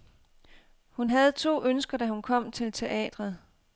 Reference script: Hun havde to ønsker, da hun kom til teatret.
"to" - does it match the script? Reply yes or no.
yes